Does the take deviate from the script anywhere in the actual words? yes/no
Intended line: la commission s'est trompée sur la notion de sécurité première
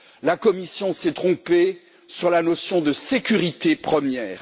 no